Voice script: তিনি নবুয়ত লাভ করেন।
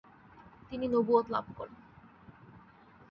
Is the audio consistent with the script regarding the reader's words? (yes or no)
yes